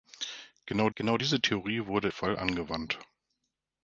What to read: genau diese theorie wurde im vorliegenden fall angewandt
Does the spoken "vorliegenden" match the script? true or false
false